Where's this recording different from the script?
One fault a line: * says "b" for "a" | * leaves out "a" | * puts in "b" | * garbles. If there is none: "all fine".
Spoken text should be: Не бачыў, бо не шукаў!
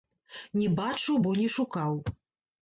all fine